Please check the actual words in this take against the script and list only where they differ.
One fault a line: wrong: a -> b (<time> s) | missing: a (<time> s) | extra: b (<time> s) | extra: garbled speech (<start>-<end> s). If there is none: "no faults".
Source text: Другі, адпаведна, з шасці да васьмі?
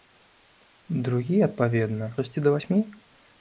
missing: з (2.1 s)